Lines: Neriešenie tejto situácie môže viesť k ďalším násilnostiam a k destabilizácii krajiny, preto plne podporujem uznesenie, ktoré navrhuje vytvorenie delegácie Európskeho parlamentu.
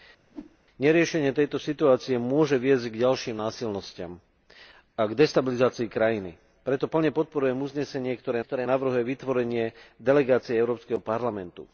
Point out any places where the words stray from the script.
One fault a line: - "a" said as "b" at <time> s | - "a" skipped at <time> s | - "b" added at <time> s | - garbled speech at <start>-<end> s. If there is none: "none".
- "ktoré" added at 8.4 s